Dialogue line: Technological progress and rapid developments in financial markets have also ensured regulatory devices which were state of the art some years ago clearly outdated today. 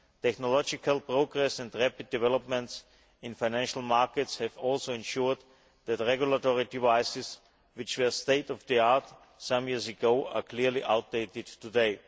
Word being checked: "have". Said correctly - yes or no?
yes